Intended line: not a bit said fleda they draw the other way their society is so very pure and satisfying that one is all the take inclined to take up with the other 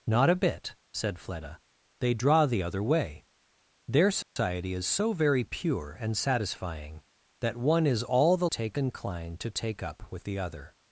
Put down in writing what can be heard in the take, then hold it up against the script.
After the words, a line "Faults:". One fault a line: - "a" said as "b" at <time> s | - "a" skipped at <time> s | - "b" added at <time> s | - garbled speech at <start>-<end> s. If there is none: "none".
not a bit said fleda they draw the other way their society is so very pure and satisfying that one is all the take inclined to take up with the other
Faults:
none